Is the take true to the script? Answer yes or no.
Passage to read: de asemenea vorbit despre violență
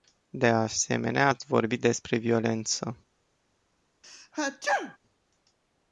no